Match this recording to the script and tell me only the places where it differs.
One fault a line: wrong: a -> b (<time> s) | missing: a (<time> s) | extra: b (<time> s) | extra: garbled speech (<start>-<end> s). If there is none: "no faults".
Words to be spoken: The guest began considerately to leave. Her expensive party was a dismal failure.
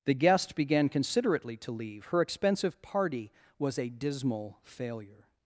no faults